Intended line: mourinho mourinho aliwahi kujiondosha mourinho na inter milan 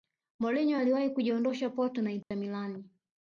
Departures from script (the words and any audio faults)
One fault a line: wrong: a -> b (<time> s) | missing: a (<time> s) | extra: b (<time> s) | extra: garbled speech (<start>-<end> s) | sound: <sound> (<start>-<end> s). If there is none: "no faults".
missing: mourinho (0.8 s)
wrong: mourinho -> porto (1.7 s)
sound: dropout (2.2-2.3 s)